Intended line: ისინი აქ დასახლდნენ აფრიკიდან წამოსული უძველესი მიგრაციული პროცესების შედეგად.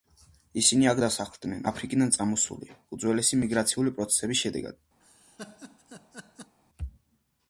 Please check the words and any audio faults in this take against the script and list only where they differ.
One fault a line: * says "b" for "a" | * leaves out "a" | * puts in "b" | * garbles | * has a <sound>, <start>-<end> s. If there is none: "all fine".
* has a laugh, 5.0-6.5 s